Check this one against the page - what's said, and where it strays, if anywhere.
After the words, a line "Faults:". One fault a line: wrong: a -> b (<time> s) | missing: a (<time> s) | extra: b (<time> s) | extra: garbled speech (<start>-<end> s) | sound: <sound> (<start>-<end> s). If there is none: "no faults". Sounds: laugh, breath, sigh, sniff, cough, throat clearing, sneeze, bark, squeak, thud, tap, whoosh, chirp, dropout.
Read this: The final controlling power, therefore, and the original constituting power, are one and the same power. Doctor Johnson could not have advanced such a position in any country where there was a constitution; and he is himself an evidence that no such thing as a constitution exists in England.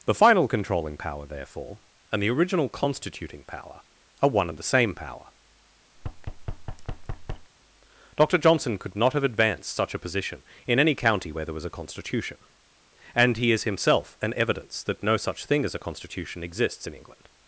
The final controlling power, therefore, and the original constituting power, are one and the same power. Doctor Johnson could not have advanced such a position in any county where there was a constitution; and he is himself an evidence that no such thing as a constitution exists in England.
Faults:
sound: thud (6.0-7.5 s)
wrong: country -> county (10.9 s)